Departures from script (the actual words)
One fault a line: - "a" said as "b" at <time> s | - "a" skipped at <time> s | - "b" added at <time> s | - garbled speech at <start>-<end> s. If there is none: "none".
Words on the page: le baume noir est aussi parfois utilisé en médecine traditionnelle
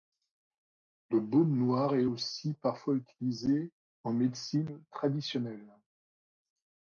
none